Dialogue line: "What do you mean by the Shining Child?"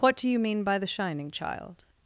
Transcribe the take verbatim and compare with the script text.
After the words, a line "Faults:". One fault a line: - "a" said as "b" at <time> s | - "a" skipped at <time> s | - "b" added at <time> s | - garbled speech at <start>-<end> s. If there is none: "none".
"What do you mean by the Shining Child?"
Faults:
none